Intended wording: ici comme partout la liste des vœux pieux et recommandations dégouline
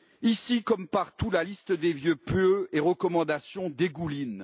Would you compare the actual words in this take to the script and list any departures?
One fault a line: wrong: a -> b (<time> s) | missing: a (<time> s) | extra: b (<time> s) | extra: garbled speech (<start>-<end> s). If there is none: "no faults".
no faults